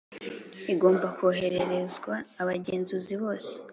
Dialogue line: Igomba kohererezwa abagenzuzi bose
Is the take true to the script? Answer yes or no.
yes